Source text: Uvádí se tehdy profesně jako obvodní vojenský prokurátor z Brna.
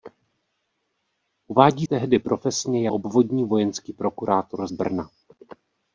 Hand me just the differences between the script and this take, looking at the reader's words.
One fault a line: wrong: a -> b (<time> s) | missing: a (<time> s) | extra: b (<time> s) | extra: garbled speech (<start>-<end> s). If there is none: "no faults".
missing: se (1.9 s)
missing: jako (2.9 s)
missing: z (4.7 s)